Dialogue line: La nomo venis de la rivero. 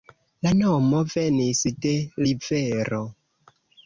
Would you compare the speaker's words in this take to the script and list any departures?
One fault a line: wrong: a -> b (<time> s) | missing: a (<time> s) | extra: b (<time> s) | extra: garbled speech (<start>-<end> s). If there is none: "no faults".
missing: la (1.9 s)